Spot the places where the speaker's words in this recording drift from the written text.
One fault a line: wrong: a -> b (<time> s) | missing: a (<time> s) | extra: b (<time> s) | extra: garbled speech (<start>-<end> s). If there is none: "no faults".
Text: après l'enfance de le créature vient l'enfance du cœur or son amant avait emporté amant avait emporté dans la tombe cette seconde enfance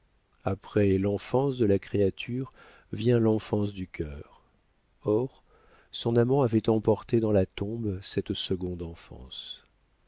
wrong: le -> la (1.7 s)
missing: amant avait emporté (7.2 s)